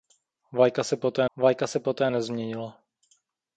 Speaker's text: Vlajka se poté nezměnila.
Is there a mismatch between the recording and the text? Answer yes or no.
yes